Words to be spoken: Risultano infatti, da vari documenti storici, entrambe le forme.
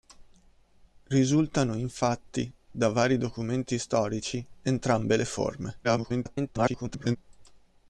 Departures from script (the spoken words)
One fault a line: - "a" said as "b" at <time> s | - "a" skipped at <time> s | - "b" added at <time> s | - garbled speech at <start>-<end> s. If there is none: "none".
- garbled speech at 5.8-7.2 s